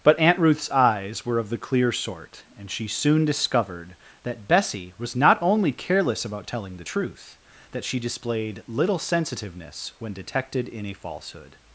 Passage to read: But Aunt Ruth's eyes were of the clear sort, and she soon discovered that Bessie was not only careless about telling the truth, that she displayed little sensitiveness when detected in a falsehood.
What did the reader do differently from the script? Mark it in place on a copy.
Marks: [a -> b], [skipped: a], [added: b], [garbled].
But Aunt Ruth's eyes were of the clear sort, and she soon discovered that Bessie was not only careless about telling the truth, that she displayed little sensitiveness when detected in a falsehood.